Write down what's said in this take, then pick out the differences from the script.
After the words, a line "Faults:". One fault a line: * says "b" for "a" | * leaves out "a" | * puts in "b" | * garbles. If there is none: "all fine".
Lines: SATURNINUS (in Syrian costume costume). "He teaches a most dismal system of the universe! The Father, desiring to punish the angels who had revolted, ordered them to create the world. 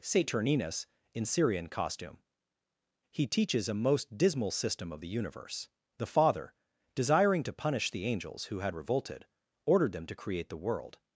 SATURNINUS (in Syrian costume). "He teaches a most dismal system of the universe! The Father, desiring to punish the angels who had revolted, ordered them to create the world.
Faults:
* leaves out "costume"